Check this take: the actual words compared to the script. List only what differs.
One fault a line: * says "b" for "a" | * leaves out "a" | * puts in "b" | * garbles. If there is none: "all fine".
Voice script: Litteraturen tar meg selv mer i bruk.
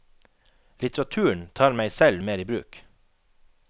all fine